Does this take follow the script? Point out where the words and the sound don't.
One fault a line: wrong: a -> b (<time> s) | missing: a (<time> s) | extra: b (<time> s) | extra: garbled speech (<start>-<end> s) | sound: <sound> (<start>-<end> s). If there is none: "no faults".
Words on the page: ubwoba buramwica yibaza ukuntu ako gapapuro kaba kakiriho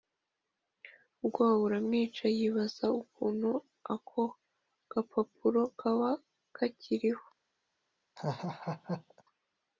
sound: laugh (8.2-9.2 s)